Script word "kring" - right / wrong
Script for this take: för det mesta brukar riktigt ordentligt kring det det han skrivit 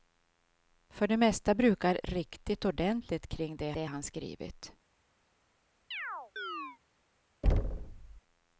right